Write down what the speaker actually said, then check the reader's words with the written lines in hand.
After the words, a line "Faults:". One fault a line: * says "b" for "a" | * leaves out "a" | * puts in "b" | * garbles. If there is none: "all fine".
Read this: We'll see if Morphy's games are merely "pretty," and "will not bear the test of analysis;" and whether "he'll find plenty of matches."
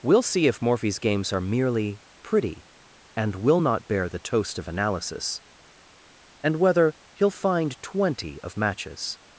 We'll see if Morphy's games are merely "pretty," and "will not bear the toast of analysis;" and whether "he'll find twenty of matches."
Faults:
* says "toast" for "test"
* says "twenty" for "plenty"